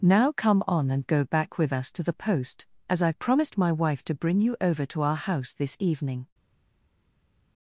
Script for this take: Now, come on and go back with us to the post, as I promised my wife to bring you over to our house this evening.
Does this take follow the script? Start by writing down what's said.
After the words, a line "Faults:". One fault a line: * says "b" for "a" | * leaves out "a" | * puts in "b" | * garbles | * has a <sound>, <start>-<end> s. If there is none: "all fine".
Now, come on and go back with us to the post, as I promised my wife to bring you over to our house this evening.
Faults:
all fine